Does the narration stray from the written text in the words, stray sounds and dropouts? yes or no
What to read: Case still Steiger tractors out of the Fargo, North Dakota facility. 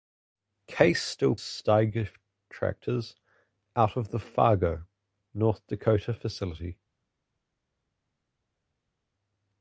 no